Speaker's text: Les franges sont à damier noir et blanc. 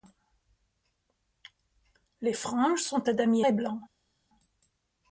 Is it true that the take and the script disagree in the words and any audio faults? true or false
true